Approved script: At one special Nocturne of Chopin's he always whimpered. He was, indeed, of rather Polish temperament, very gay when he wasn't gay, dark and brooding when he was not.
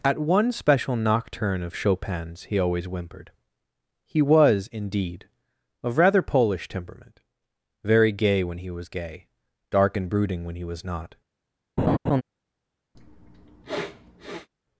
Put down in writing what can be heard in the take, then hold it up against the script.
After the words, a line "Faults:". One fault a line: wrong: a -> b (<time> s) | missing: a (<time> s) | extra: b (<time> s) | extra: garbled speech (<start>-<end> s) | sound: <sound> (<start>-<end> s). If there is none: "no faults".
At one special Nocturne of Chopin's he always whimpered. He was, indeed, of rather Polish temperament, very gay when he was gay, dark and brooding when he was not.
Faults:
wrong: wasn't -> was (8.7 s)
sound: laugh (11.8-12.2 s)
sound: sniff (12.9-14.5 s)